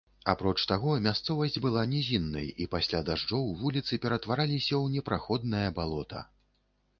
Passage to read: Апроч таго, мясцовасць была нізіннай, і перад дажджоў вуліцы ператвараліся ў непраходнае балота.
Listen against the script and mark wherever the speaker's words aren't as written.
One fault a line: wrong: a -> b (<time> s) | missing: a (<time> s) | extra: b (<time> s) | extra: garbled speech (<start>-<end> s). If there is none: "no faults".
wrong: перад -> пасля (2.8 s)